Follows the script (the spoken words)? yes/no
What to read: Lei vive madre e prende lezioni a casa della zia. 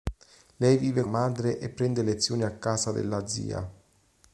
yes